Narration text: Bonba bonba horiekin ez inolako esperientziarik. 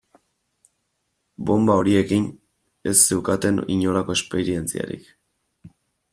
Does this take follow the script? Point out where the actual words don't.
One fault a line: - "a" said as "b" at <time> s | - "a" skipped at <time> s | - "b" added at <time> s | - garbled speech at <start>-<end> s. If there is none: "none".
- "bonba" skipped at 1.8 s
- "zeukaten" added at 3.1 s